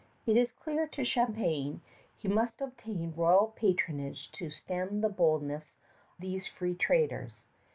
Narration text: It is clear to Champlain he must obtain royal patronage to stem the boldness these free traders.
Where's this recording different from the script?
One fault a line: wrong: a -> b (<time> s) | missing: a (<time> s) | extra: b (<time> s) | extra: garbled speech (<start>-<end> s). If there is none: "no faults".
no faults